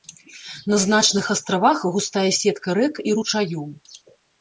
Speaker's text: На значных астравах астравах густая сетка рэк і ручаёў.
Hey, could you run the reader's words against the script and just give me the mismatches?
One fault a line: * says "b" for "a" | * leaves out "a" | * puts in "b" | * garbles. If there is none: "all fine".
* leaves out "астравах"